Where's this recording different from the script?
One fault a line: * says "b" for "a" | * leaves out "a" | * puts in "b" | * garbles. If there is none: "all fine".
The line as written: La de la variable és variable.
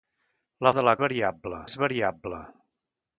all fine